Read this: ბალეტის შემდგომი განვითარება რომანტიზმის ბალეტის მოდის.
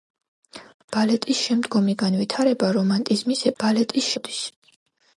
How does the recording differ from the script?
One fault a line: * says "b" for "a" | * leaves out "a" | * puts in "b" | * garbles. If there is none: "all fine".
all fine